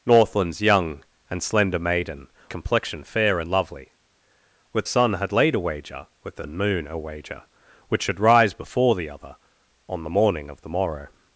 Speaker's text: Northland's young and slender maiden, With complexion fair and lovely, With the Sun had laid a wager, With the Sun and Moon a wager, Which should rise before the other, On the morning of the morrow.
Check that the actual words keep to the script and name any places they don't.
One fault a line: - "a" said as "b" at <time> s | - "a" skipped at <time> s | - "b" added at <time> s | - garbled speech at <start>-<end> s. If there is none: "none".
- "With" skipped at 2.3 s
- "the" skipped at 4.9 s
- "Sun" skipped at 6.4 s